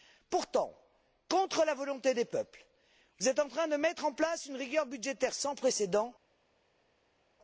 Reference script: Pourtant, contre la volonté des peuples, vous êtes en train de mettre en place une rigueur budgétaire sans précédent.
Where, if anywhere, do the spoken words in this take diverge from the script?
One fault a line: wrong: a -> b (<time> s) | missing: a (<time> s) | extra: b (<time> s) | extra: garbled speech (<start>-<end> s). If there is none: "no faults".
no faults